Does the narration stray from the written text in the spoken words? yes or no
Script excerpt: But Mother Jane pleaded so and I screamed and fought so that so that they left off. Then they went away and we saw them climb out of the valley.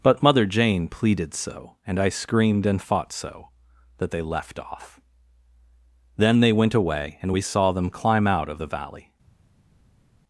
yes